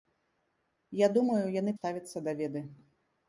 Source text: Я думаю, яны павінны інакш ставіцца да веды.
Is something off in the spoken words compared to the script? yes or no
yes